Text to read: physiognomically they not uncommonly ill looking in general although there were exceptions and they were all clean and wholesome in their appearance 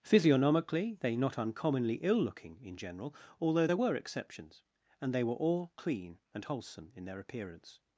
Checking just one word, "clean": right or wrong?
right